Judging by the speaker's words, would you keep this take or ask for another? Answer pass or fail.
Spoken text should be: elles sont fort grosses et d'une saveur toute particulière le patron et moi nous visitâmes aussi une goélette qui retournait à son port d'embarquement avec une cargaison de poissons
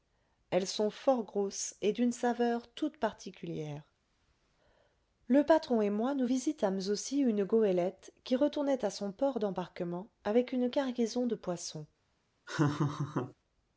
pass